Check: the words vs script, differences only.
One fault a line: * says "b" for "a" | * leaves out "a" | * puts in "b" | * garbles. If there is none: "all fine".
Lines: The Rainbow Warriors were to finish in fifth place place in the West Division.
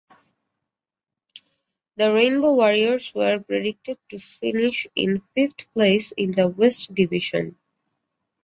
* puts in "predicted"
* leaves out "place"